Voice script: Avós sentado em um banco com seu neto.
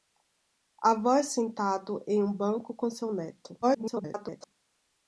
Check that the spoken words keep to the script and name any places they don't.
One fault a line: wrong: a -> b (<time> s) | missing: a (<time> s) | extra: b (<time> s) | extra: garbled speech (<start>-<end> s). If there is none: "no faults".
extra: garbled speech (3.6-4.5 s)